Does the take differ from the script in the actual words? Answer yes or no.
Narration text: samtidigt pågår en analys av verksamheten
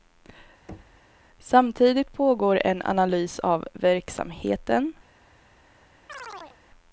no